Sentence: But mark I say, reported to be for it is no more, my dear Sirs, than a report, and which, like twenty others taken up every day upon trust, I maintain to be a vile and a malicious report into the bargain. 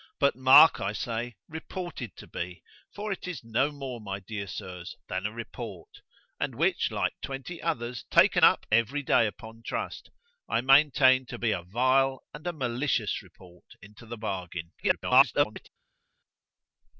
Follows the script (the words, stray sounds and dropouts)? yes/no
no